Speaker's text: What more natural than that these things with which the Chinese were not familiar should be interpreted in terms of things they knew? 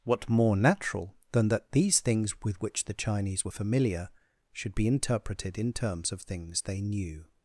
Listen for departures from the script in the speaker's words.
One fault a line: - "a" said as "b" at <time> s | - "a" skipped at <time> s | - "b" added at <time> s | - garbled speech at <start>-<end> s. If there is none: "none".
- "not" skipped at 3.5 s